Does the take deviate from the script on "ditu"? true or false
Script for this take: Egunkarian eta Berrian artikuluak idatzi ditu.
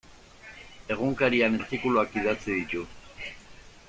false